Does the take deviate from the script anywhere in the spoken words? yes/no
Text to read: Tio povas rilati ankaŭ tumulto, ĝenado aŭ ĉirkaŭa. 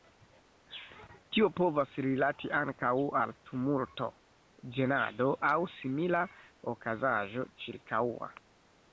yes